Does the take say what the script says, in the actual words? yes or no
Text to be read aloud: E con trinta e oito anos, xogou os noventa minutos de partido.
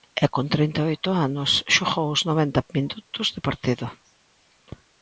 yes